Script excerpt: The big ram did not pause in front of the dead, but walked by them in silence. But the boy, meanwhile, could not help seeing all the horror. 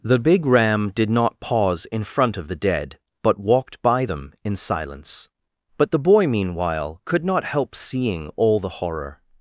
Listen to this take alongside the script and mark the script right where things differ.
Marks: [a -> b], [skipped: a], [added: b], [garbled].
The big ram did not pause in front of the dead, but walked by them in silence. But the boy, meanwhile, could not help seeing all the horror.